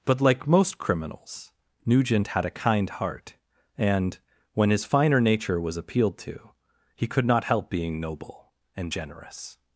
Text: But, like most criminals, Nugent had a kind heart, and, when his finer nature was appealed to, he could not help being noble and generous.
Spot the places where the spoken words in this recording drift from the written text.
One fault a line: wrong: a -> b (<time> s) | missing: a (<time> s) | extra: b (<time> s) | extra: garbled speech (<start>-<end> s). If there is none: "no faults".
no faults